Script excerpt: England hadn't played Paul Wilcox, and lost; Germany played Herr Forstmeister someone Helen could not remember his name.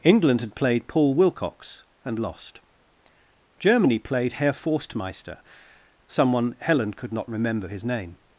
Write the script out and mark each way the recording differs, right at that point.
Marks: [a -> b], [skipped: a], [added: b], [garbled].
England [hadn't -> had] played Paul Wilcox, and lost; Germany played Herr Forstmeister someone Helen could not remember his name.